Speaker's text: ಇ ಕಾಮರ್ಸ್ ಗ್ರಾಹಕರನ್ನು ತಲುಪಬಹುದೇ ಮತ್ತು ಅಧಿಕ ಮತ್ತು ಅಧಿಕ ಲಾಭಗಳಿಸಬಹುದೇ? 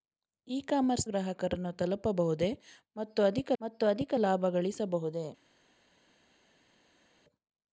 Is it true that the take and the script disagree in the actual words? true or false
false